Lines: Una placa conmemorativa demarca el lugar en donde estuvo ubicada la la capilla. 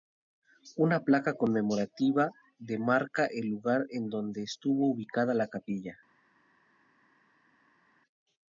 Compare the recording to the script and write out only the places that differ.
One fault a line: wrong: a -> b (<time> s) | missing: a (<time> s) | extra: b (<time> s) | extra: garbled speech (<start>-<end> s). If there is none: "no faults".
missing: la (5.5 s)